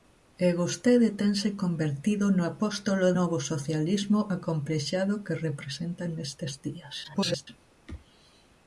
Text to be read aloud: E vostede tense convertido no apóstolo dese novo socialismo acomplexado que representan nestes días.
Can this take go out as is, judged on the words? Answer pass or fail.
fail